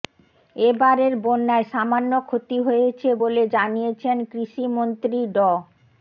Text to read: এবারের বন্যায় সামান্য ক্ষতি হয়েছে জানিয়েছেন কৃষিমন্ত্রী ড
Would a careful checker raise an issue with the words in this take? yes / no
yes